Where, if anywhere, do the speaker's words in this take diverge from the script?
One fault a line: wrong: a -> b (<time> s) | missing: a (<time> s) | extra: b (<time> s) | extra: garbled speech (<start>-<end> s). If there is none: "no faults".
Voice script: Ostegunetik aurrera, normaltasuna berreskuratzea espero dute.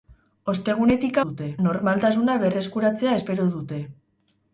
wrong: aurrera -> dute (1.2 s)